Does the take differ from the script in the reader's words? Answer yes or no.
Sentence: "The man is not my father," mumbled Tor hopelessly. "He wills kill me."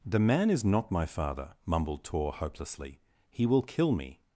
yes